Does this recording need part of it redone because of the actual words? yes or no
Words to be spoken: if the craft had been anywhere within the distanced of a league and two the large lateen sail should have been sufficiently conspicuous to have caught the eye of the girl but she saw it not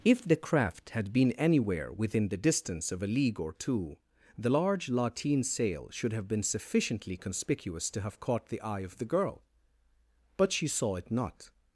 yes